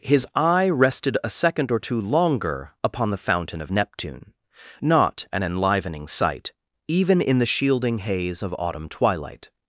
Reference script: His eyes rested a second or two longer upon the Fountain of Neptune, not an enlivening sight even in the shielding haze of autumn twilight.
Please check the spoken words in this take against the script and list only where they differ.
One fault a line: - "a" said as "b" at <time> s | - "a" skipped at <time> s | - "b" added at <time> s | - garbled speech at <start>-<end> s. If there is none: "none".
- "eyes" said as "eye" at 0.3 s